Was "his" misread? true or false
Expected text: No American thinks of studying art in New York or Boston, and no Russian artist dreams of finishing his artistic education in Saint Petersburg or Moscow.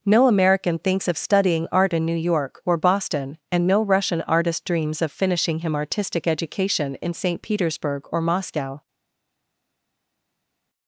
true